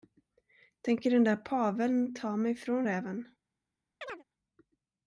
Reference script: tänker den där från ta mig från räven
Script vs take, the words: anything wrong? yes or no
yes